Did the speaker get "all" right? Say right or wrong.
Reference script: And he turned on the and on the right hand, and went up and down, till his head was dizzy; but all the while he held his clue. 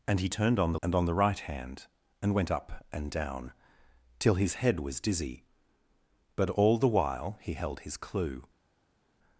right